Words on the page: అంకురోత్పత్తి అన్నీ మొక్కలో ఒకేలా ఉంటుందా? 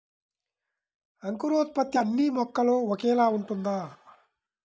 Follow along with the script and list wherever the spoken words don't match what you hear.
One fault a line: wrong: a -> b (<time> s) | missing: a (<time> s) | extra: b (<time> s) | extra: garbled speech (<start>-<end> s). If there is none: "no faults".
no faults